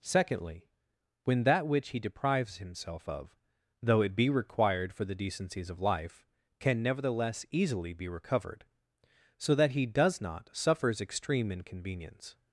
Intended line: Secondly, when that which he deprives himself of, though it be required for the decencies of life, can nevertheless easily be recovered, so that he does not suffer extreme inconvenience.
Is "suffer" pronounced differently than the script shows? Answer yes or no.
yes